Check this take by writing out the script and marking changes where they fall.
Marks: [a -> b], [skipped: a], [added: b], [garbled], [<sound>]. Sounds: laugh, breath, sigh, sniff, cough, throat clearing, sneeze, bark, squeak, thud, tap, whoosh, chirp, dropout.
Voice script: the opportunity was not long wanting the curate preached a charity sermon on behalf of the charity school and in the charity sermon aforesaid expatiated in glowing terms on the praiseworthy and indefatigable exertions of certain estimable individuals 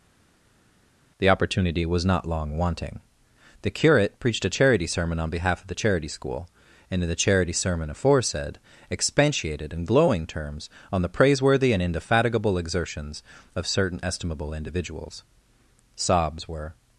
the opportunity was not long wanting the curate preached a charity sermon on behalf of the charity school and in the charity sermon aforesaid expatiated in glowing terms on the praiseworthy and indefatigable exertions of certain estimable individuals [added: sobs were]